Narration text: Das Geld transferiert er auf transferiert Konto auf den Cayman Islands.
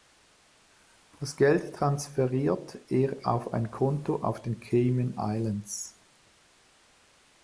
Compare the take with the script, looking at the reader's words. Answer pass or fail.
fail